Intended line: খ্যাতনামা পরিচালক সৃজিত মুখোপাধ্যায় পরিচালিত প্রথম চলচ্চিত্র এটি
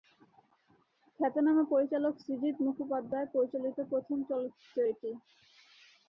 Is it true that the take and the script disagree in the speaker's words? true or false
false